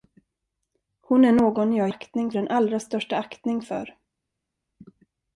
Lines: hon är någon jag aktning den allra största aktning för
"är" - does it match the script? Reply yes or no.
yes